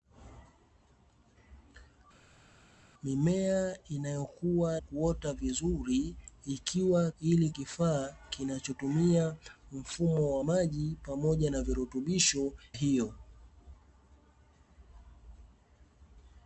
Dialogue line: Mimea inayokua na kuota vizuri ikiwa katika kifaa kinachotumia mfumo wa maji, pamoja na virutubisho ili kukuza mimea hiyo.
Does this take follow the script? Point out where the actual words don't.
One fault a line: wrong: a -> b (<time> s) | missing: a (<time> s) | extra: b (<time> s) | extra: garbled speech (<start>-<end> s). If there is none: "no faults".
missing: na (4.8 s)
wrong: katika -> ili (7.2 s)
missing: ili kukuza mimea (12.5 s)